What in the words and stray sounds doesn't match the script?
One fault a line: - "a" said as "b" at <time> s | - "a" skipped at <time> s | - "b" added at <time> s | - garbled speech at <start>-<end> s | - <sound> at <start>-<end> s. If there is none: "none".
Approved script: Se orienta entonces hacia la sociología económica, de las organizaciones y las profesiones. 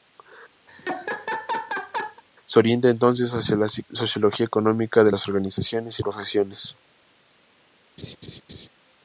- laugh at 0.7-2.2 s
- "las" skipped at 6.0 s
- laugh at 8.0-8.7 s